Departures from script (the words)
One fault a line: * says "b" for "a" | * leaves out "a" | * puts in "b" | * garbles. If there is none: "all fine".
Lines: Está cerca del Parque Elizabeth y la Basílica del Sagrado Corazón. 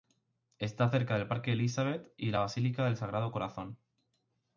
all fine